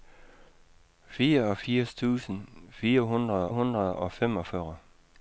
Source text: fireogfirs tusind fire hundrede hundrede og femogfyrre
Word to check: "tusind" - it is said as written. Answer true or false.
true